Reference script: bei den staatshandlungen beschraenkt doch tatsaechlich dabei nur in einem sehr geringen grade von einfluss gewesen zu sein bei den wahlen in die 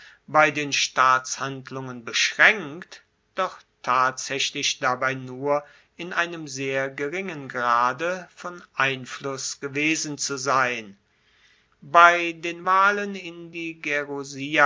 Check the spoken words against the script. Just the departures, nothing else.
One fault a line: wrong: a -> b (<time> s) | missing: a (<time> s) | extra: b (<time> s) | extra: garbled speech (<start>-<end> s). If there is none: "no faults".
no faults